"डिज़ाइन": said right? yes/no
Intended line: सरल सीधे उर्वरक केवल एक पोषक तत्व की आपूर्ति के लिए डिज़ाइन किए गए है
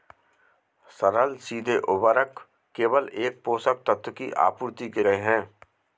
no